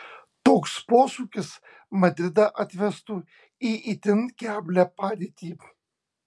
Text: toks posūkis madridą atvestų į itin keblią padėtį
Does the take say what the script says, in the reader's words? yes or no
yes